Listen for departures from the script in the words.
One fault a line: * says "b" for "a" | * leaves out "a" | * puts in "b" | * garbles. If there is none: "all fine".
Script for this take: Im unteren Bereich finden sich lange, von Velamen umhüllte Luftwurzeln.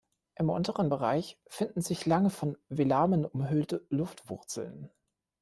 all fine